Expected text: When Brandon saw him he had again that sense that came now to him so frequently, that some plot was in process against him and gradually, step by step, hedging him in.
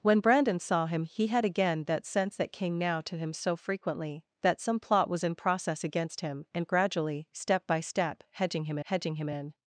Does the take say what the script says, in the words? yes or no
no